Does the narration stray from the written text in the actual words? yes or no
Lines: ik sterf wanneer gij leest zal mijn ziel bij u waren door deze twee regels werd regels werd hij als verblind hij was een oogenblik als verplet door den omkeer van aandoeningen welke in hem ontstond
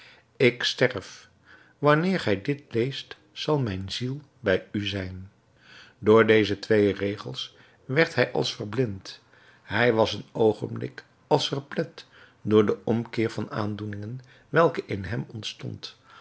yes